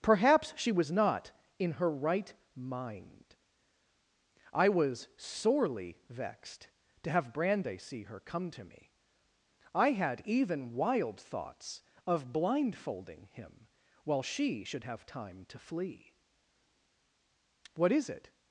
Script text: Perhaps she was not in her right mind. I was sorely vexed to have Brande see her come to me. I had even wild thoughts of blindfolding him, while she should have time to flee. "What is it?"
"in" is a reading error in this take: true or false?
false